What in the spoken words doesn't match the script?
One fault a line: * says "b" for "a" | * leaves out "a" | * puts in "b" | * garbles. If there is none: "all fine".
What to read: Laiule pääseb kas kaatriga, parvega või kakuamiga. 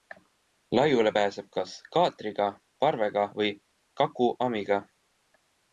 all fine